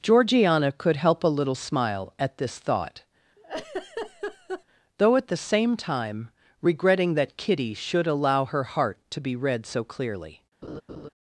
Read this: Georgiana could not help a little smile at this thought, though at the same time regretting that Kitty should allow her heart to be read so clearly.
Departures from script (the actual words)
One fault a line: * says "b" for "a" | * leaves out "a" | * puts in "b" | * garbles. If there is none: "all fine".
* leaves out "not"